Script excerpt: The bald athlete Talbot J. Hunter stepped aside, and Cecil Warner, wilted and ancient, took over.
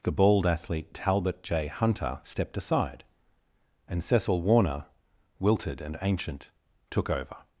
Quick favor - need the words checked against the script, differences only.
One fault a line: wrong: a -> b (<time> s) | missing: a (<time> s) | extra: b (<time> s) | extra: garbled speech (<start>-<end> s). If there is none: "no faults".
no faults